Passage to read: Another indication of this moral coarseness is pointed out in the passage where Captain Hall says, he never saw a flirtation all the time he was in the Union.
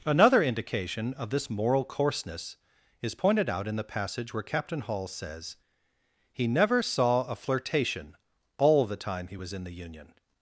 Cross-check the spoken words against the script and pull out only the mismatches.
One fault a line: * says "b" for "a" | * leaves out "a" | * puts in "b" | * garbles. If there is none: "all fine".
all fine